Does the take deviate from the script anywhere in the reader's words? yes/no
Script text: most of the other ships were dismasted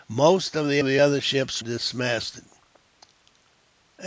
yes